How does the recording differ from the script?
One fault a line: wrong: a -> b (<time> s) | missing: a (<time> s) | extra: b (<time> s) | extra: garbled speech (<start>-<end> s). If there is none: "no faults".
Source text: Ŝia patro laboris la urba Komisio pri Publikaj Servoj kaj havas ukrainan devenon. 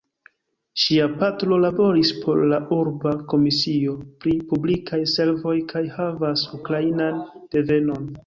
extra: por (2.2 s)